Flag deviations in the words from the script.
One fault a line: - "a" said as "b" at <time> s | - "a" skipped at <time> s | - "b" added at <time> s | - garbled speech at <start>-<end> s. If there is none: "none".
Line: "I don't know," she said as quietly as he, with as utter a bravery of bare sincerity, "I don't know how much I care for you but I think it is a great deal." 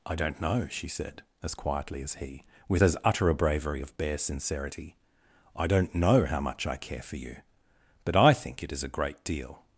none